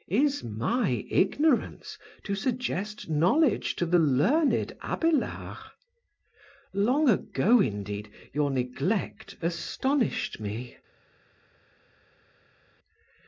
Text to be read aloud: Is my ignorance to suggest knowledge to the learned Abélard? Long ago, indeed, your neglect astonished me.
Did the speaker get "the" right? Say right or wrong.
right